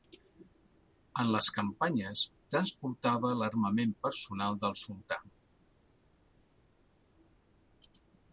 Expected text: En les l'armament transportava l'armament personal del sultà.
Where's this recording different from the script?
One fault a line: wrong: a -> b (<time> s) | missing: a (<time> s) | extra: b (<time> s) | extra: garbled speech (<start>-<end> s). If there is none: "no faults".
wrong: l'armament -> campanyes (1.6 s)